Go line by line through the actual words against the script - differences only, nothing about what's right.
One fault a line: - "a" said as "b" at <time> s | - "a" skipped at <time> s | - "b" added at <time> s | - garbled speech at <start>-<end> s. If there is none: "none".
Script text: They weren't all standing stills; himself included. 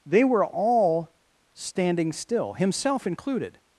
- "weren't" said as "were" at 0.2 s
- "stills" said as "still" at 2.1 s